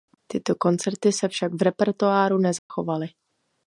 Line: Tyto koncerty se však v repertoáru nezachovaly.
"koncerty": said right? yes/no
yes